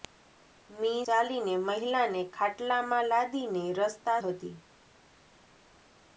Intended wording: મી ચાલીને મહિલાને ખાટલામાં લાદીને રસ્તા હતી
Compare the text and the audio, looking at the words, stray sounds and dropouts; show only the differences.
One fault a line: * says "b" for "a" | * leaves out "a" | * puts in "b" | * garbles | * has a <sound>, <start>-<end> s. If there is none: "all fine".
all fine